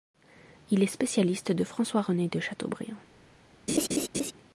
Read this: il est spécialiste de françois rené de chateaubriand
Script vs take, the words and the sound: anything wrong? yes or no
yes